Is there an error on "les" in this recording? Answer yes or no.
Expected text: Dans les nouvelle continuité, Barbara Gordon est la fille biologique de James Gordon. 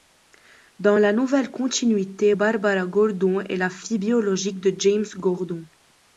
yes